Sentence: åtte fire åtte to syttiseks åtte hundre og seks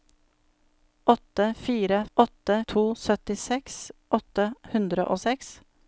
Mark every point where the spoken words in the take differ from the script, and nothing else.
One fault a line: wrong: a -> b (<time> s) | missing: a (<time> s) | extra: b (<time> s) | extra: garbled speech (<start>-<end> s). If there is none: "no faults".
no faults